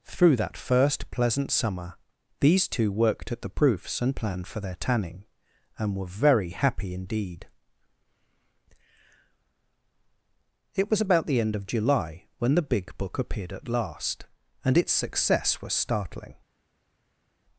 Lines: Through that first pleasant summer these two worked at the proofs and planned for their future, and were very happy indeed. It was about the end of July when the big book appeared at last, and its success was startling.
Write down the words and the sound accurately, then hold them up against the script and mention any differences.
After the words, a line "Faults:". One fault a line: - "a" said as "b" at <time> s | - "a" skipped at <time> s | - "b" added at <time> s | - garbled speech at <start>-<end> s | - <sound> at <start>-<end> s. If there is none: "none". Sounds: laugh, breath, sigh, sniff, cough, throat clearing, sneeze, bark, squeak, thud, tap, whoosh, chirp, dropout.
Through that first pleasant summer these two worked at the proofs and planned for their tanning, and were very happy indeed. It was about the end of July when the big book appeared at last, and its success was startling.
Faults:
- "future" said as "tanning" at 4.7 s